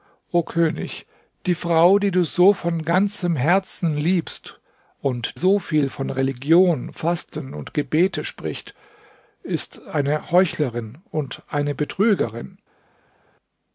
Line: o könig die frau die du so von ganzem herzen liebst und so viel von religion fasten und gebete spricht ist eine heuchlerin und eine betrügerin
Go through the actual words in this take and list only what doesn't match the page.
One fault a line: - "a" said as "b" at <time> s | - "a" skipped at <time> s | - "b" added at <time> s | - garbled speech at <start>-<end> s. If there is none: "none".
none